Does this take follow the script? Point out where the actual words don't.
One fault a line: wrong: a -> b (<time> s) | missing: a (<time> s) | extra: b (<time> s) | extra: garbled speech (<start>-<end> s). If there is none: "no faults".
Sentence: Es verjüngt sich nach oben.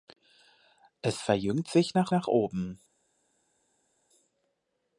extra: nach (2.1 s)